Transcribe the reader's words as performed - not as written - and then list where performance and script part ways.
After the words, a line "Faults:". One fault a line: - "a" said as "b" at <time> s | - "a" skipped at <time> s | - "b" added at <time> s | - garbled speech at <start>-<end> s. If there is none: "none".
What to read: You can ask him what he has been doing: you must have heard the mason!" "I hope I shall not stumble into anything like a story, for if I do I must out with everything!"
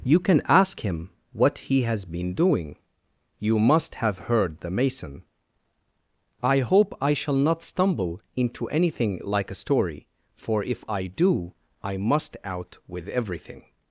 You can ask him what he has been doing: you must have heard the mason!" "I hope I shall not stumble into anything like a story, for if I do I must out with everything!"
Faults:
none